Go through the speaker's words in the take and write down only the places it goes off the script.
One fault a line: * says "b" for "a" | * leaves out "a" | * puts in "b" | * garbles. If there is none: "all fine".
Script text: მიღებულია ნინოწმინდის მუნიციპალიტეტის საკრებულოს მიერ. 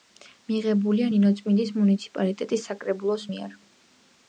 all fine